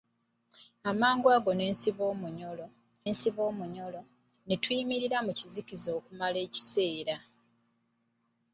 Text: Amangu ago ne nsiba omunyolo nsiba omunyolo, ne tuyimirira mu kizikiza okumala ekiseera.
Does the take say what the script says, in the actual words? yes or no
yes